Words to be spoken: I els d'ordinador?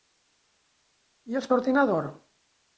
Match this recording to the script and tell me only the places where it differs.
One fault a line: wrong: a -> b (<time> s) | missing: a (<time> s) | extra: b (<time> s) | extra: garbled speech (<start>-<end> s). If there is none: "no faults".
no faults